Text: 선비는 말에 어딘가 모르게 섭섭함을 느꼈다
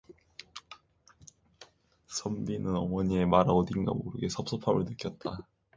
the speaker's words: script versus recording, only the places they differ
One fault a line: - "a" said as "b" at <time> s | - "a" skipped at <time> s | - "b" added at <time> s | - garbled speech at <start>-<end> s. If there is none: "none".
- "어머니의" added at 2.8 s